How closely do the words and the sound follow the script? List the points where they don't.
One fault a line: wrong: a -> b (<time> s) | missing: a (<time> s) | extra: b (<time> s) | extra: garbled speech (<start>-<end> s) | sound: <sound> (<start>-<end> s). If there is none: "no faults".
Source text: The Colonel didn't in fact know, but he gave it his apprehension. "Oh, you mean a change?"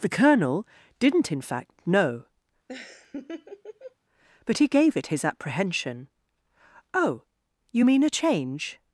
sound: laugh (2.7-4.0 s)